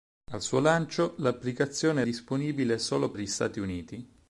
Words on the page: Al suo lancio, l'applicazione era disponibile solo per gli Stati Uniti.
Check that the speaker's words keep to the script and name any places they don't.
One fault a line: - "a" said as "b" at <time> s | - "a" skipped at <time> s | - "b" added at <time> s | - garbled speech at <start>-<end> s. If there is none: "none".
- "era" skipped at 2.0 s
- "per" skipped at 3.1 s